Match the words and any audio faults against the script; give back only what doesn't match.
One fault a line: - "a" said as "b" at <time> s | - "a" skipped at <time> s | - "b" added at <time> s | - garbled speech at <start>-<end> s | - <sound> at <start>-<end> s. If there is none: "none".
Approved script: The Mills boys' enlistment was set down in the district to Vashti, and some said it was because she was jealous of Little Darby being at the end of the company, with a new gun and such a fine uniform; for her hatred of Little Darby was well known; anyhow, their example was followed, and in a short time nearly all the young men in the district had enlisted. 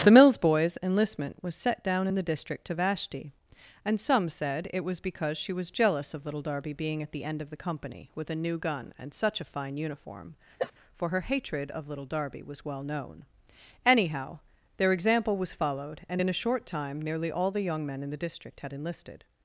- cough at 10.6-10.7 s